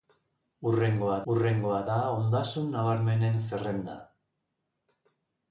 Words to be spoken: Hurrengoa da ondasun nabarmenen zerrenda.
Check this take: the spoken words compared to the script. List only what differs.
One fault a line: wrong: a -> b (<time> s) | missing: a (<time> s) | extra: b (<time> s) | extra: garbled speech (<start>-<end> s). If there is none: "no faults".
extra: hurrengoa (1.3 s)